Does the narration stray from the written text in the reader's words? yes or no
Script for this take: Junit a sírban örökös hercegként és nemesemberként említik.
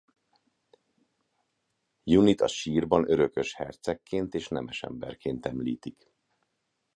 no